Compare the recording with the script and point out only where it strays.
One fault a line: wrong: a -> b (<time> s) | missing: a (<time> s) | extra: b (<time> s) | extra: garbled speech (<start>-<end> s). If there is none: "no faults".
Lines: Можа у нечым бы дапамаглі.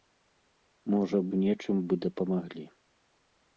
no faults